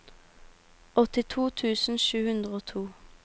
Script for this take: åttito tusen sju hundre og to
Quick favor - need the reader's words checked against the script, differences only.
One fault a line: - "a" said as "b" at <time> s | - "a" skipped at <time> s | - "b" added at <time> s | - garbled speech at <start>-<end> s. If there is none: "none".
none